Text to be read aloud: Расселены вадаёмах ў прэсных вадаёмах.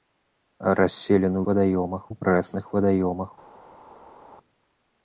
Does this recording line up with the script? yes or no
yes